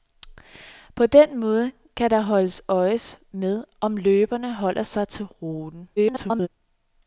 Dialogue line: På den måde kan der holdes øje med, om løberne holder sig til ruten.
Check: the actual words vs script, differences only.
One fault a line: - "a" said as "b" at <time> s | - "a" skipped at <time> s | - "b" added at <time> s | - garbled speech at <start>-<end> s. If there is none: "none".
- garbled speech at 6.0-6.5 s